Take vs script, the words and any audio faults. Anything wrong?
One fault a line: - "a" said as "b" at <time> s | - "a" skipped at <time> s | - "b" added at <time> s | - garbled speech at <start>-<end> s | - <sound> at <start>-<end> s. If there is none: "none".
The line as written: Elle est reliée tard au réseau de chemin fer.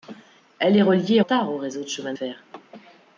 none